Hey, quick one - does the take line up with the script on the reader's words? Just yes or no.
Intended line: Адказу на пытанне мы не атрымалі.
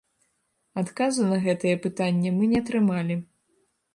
no